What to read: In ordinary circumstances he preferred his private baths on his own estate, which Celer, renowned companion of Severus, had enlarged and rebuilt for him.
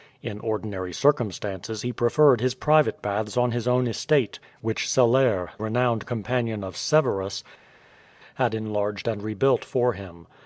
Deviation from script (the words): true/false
false